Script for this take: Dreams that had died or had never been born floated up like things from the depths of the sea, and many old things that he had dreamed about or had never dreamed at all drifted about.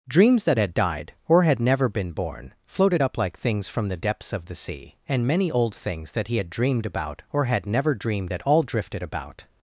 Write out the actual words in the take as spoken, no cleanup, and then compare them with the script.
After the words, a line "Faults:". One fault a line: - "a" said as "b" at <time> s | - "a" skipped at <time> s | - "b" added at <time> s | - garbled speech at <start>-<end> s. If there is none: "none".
Dreams that had died or had never been born floated up like things from the depths of the sea, and many old things that he had dreamed about or had never dreamed at all drifted about.
Faults:
none